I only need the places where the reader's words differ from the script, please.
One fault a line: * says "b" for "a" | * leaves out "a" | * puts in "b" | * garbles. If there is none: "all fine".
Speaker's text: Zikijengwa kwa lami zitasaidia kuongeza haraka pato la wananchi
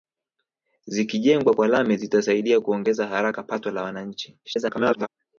* garbles